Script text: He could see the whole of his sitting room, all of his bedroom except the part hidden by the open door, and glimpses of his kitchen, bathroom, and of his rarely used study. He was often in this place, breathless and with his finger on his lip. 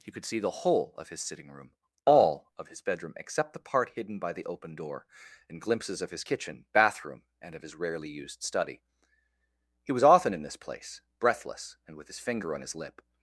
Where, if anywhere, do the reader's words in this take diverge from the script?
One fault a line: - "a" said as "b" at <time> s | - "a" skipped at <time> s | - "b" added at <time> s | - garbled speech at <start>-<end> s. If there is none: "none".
none